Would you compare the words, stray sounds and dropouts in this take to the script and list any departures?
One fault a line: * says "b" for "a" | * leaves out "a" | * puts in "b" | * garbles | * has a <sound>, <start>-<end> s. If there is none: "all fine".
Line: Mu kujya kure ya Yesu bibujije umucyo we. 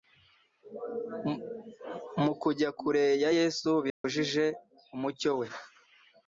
* has a dropout, 3.9-4.0 s